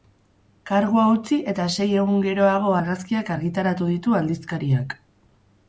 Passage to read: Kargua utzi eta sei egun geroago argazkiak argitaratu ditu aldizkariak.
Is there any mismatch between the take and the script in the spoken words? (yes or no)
no